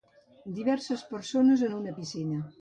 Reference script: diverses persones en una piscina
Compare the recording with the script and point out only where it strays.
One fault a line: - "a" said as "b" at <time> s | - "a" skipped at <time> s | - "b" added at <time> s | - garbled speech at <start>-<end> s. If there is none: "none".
none